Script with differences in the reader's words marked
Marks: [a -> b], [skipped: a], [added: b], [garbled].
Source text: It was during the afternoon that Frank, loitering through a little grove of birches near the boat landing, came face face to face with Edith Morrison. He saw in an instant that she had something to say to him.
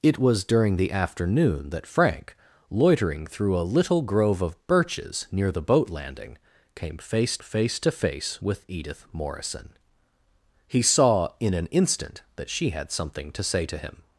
It was during the afternoon that Frank, loitering through a little grove of birches near the boat landing, came face face to face with Edith Morrison. He saw in an instant that she had something to say to him.